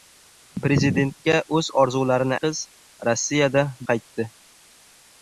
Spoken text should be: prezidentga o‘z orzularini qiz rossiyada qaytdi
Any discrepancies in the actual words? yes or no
no